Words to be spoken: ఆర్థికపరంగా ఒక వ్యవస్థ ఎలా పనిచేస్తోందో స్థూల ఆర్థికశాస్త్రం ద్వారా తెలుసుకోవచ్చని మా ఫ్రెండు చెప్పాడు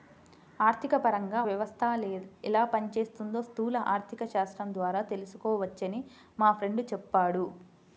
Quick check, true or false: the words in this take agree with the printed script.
false